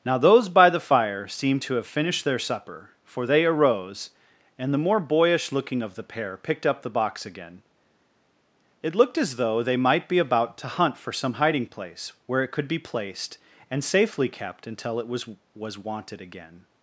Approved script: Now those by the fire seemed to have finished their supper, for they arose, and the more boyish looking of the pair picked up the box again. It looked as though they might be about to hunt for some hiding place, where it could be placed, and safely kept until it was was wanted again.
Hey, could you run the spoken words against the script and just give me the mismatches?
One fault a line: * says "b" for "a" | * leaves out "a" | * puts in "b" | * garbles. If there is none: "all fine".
all fine